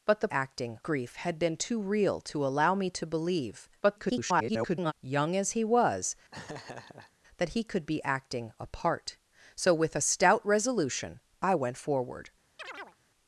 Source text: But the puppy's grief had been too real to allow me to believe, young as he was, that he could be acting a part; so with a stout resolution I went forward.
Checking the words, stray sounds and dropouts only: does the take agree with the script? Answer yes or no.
no